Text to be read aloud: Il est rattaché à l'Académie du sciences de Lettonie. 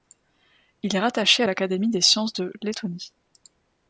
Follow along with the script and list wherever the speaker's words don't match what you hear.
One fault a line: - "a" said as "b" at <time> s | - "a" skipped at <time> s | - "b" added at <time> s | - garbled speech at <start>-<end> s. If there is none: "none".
- "du" said as "des" at 1.9 s